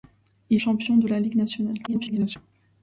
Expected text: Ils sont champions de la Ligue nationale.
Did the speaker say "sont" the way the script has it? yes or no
no